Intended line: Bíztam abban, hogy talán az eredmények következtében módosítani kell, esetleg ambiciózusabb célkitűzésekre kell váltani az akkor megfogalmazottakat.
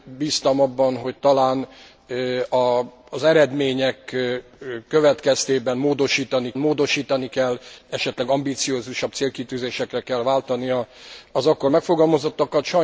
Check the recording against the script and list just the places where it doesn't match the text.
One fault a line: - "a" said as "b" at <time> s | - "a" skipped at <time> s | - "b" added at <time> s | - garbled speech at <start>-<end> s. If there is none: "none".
- "módosítani" added at 6.6 s